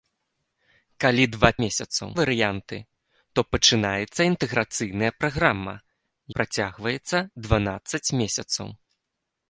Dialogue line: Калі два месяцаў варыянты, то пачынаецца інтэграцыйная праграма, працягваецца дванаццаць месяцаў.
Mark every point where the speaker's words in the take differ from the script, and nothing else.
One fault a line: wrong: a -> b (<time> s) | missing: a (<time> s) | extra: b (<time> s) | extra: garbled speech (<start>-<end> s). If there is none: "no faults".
no faults